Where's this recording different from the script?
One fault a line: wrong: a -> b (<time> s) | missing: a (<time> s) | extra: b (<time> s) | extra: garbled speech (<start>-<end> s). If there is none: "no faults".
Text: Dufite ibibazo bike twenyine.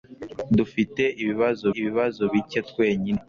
extra: ibibazo (1.8 s)